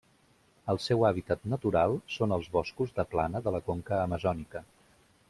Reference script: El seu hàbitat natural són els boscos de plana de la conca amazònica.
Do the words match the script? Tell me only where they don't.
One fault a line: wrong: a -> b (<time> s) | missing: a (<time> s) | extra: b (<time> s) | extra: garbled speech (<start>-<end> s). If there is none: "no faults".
no faults